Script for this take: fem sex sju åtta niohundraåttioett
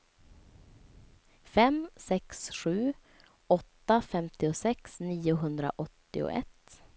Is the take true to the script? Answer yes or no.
no